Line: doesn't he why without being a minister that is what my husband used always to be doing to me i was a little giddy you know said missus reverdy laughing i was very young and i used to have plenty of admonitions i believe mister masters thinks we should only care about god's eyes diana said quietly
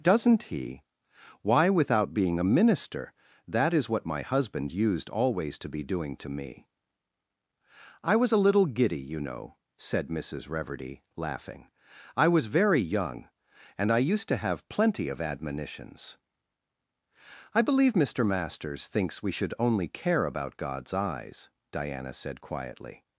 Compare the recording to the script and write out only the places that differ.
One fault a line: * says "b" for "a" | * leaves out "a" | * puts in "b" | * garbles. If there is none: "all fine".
all fine